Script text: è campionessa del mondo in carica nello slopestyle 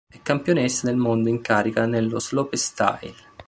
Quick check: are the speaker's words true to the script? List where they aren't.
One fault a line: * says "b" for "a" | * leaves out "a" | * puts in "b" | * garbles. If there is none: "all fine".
all fine